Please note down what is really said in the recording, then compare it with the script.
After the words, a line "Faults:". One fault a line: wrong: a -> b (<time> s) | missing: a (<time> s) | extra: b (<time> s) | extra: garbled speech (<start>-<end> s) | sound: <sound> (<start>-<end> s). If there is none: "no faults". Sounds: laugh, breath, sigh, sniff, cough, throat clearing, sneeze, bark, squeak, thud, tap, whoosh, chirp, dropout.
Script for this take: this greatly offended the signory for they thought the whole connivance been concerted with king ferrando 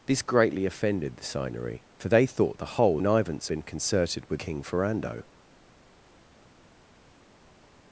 this greatly offended the signory for they thought the whole connivance been concerted with king ferrando
Faults:
no faults